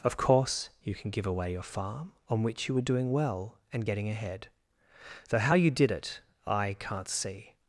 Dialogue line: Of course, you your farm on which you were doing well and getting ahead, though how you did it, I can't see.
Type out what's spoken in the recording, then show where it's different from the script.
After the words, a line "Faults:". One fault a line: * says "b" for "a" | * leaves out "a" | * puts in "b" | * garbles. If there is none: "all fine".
Of course, you can give away your farm on which you were doing well and getting ahead, though how you did it, I can't see.
Faults:
* puts in "can give away"